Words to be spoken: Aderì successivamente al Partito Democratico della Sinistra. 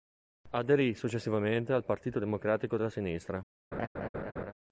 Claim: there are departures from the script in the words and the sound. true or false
true